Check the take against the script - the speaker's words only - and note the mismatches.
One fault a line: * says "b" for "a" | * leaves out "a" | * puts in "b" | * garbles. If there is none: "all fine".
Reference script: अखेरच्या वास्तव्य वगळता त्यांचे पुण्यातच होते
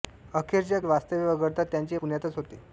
all fine